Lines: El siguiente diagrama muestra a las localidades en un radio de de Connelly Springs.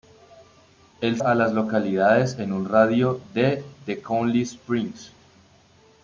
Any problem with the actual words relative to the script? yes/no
yes